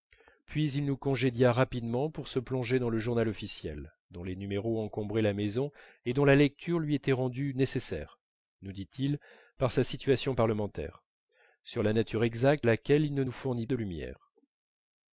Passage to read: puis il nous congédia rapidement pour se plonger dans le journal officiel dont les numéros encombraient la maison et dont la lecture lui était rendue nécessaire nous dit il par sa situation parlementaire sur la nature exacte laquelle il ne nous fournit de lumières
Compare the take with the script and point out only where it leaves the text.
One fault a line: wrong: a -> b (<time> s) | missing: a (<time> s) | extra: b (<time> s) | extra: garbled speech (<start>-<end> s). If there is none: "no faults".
no faults